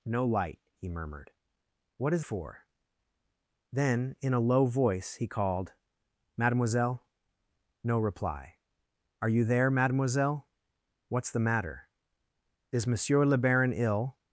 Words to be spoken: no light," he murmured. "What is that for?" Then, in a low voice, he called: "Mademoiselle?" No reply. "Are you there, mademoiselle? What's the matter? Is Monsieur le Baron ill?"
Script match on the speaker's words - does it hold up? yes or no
no